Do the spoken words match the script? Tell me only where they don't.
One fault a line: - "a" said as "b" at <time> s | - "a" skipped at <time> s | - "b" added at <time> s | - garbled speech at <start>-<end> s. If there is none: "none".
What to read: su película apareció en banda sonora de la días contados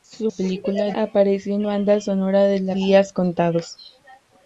none